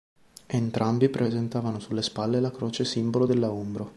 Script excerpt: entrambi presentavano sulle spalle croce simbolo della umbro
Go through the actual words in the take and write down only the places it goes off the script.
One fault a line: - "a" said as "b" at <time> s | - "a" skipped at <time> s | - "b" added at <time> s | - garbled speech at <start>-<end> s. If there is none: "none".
- "la" added at 2.4 s